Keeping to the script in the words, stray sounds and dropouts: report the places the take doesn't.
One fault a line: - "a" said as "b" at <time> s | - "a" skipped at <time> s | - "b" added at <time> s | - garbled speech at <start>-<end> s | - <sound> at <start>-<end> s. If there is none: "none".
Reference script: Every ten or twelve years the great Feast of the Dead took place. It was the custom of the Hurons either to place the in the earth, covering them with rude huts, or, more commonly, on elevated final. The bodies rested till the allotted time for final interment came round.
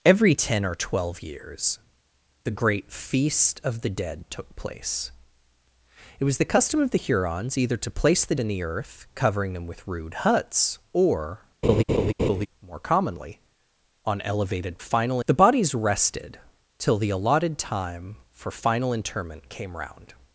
- laugh at 11.6-12.5 s